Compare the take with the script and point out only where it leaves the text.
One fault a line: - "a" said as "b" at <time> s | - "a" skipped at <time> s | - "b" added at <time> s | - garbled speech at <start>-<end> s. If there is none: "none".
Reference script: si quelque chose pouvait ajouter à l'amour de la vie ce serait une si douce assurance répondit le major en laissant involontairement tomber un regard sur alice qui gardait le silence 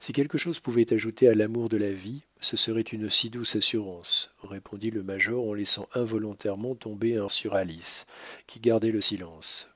- "regard" skipped at 7.2 s